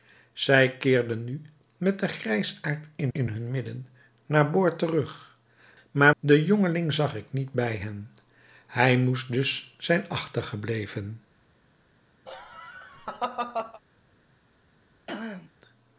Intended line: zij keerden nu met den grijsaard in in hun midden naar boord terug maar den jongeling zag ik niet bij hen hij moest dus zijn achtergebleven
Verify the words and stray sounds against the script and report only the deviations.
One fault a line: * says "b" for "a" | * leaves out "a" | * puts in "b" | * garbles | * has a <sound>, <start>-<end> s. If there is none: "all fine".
* has a laugh, 12.3-13.8 s
* has a throat clearing, 15.1-15.5 s